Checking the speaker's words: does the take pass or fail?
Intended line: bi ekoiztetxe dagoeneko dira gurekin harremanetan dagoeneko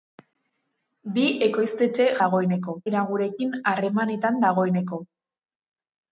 pass